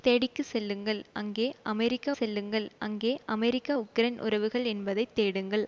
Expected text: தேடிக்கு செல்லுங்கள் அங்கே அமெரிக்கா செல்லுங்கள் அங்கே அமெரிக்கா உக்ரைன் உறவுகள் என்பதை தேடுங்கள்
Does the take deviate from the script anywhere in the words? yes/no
no